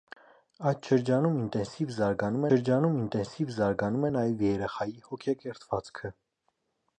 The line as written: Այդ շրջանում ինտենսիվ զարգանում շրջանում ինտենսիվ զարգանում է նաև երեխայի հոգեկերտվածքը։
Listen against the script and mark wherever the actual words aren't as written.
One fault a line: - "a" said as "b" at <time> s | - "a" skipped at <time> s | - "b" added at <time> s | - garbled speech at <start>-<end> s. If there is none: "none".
none